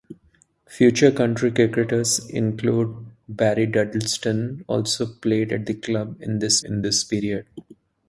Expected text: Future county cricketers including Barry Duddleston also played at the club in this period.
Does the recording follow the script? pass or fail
fail